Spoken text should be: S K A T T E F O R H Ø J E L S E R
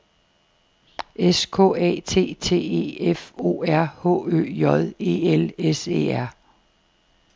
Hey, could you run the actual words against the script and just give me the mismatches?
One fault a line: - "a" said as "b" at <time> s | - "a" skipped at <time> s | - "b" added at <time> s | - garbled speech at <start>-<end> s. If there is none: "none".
none